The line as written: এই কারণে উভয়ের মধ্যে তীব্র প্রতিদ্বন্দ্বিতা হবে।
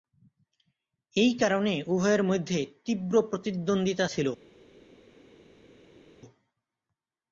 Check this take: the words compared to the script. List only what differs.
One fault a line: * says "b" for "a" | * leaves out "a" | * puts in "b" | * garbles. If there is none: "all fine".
* says "ছিল" for "হবে"